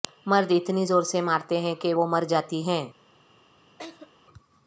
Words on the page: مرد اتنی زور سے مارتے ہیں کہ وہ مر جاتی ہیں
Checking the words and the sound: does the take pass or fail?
fail